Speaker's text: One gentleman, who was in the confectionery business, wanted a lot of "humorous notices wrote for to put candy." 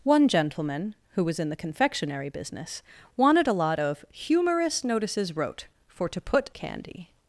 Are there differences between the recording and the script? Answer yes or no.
no